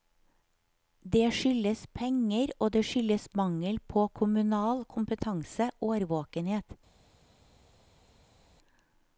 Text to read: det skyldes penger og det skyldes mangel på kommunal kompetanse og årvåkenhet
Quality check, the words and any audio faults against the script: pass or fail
fail